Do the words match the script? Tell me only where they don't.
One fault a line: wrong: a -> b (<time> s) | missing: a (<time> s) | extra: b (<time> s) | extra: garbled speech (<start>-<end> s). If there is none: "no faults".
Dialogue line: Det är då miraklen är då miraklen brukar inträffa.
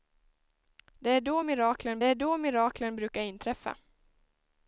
no faults